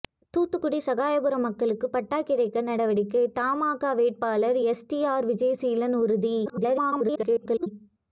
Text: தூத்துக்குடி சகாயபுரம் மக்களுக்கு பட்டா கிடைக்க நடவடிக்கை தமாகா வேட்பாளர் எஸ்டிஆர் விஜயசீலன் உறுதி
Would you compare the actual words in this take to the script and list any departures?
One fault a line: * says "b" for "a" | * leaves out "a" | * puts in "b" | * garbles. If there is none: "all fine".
* garbles